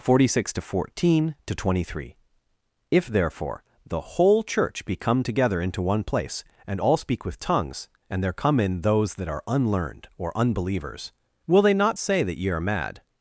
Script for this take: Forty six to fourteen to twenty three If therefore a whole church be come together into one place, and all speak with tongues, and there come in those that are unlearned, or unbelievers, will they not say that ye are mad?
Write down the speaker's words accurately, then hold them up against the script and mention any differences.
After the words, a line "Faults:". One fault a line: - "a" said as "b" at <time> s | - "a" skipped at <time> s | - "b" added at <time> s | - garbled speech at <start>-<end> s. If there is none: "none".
Forty six to fourteen to twenty three If therefore the whole church be come together into one place, and all speak with tongues, and there come in those that are unlearned, or unbelievers, will they not say that ye are mad?
Faults:
- "a" said as "the" at 3.9 s